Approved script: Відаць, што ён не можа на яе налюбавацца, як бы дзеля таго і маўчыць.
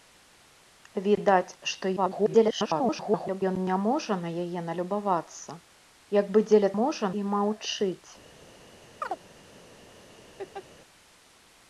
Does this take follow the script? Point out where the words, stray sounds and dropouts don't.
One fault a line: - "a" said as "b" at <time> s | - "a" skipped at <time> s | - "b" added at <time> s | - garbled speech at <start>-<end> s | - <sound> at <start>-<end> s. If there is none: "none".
- garbled speech at 2.0-3.4 s
- "таго" said as "можа" at 6.8 s
- chirp at 9.0-9.2 s
- laugh at 10.4-10.6 s